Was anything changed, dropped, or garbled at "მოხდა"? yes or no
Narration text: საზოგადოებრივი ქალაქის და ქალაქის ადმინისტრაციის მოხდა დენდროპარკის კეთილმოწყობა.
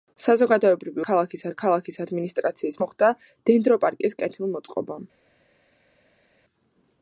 no